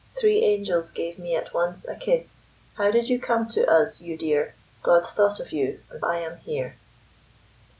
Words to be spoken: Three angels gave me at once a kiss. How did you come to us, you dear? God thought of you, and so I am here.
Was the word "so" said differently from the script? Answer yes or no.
yes